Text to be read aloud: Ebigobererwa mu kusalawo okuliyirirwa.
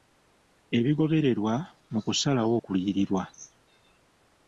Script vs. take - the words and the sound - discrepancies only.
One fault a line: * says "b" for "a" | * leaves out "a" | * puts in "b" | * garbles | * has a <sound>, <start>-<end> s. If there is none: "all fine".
all fine